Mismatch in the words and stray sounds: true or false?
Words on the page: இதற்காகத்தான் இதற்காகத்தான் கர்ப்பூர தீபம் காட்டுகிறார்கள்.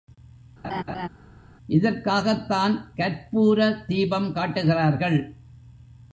true